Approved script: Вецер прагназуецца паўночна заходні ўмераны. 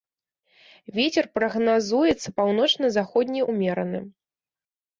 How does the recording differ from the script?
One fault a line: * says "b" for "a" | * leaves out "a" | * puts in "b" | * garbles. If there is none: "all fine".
all fine